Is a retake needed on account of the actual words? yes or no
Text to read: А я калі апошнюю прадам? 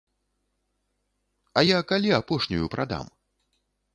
no